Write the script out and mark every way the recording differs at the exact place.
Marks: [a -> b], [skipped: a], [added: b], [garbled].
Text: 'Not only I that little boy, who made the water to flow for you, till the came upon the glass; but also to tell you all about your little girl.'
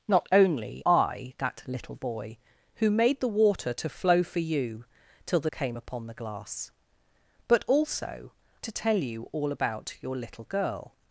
'Not only I that little boy, who made the water to flow for you, till the came upon the glass; but also to tell you all about your little girl.'